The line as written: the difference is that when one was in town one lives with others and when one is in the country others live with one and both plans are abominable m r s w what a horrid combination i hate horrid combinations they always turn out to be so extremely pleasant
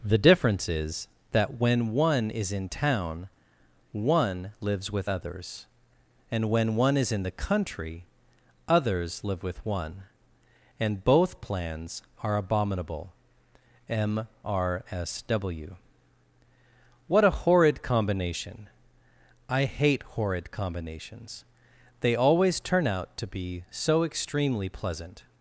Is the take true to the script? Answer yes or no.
no